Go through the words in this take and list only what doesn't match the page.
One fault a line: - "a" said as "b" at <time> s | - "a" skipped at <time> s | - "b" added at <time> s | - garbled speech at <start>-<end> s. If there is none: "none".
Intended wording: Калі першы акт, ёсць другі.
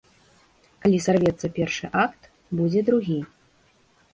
- "сарвецца" added at 1.1 s
- "ёсць" said as "будзе" at 2.6 s